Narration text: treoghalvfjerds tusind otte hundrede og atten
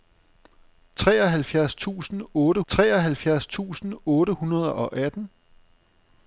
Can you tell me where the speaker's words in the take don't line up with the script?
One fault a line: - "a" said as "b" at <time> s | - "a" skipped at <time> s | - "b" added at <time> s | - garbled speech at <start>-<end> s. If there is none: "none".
- "treoghalvfjerds tusind otte" added at 2.7 s